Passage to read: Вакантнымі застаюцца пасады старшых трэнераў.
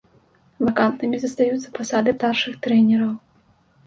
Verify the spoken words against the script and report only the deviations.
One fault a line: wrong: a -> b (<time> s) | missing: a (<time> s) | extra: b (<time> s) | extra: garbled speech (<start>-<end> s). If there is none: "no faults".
no faults